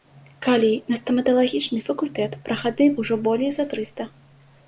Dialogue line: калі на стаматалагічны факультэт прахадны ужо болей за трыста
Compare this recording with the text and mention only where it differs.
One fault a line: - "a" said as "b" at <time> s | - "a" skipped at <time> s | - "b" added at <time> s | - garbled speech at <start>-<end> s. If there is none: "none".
none